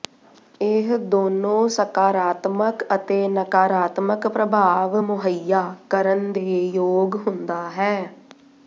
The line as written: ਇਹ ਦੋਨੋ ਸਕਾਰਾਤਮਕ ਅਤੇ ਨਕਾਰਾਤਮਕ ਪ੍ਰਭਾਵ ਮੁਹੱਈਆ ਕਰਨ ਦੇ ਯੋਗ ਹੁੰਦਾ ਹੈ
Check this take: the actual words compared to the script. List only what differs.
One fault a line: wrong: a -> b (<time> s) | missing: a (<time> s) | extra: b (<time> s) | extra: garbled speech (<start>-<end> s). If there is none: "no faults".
no faults